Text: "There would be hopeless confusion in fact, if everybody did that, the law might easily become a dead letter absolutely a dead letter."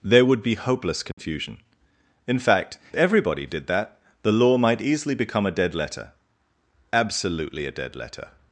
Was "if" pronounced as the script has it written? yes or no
no